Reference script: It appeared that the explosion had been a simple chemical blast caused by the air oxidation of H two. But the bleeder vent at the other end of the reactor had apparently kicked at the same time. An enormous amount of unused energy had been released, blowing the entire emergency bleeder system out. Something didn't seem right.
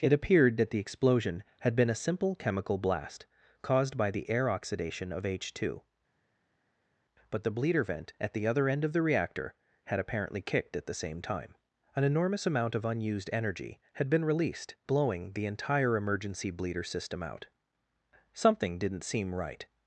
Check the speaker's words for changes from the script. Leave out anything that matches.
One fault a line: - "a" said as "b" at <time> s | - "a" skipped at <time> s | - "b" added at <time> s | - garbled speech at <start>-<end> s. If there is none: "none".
none